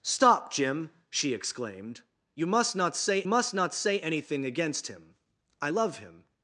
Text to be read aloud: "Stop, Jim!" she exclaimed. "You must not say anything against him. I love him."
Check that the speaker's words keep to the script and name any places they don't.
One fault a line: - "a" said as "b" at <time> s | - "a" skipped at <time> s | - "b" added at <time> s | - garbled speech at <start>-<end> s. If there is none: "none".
- "must not say" added at 3.3 s